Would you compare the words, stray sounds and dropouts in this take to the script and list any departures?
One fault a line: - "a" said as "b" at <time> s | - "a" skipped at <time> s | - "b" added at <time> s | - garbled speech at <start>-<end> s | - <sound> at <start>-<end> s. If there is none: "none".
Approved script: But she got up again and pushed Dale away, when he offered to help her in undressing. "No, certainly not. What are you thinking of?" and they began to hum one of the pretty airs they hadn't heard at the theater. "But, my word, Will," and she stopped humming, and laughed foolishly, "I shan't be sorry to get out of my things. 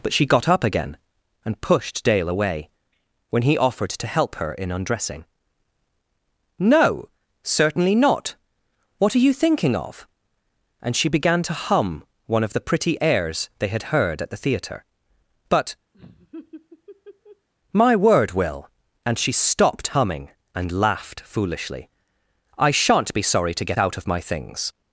- "they" said as "she" at 10.9 s
- "hadn't" said as "had" at 13.7 s
- laugh at 15.9-17.5 s